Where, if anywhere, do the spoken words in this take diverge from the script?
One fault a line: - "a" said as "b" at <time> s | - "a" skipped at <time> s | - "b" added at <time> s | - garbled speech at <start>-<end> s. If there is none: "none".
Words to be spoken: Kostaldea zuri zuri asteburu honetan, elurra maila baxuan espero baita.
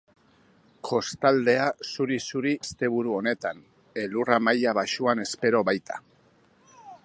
none